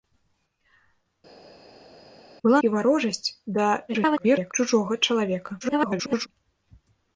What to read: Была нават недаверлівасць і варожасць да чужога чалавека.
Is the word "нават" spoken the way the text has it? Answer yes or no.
no